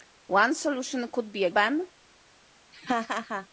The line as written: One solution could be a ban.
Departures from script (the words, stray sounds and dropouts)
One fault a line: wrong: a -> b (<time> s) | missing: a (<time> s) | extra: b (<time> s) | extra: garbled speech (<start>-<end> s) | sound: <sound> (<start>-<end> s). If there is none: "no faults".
sound: laugh (2.7-3.5 s)